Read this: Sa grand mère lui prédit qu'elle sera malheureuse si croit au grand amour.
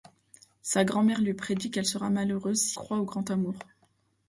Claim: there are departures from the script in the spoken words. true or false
false